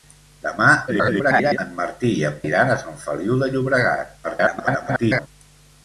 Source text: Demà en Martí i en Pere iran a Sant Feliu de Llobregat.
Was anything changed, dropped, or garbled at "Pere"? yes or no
yes